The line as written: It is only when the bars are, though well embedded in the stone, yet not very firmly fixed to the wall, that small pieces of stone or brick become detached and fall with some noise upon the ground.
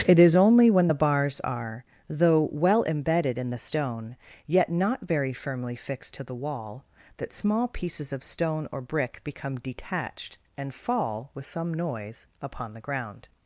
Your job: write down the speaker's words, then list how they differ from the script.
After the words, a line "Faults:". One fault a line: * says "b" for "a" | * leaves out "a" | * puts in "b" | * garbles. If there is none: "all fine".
It is only when the bars are, though well embedded in the stone, yet not very firmly fixed to the wall, that small pieces of stone or brick become detached and fall with some noise upon the ground.
Faults:
all fine